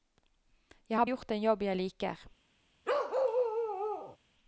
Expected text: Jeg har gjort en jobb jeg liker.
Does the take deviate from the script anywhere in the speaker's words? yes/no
no